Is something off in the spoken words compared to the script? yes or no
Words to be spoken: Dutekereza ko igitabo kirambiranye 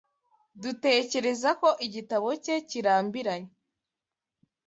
yes